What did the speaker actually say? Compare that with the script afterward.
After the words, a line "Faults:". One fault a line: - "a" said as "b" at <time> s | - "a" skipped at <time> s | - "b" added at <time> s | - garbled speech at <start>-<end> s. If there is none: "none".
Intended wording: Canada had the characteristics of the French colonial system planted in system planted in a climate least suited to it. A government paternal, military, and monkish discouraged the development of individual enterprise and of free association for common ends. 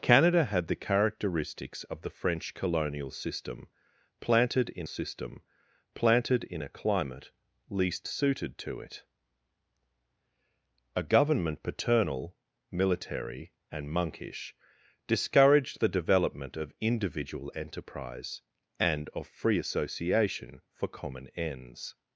Canada had the characteristics of the French colonial system planted in system planted in a climate least suited to it. A government paternal, military, and monkish discouraged the development of individual enterprise and of free association for common ends.
Faults:
none